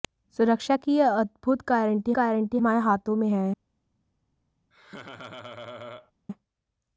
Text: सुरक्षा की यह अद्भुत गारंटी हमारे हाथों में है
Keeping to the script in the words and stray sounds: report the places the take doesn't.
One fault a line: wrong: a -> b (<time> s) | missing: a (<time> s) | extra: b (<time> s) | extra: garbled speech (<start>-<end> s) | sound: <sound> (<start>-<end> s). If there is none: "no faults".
extra: गारंटी (2.1 s)
sound: laugh (4.7-6.1 s)